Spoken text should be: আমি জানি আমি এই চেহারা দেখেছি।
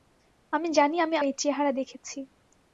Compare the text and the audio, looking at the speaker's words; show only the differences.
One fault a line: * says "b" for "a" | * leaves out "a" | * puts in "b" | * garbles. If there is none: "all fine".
all fine